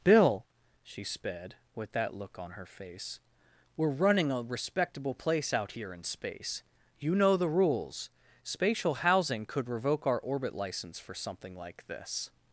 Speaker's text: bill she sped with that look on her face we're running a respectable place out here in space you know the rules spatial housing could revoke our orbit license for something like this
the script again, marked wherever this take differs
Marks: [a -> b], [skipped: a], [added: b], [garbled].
bill she sped with that look on her face we're running a respectable place out here in space you know the rules spatial housing could revoke our orbit license for something like this